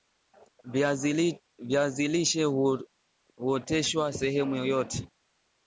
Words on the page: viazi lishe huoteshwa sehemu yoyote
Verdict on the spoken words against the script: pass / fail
pass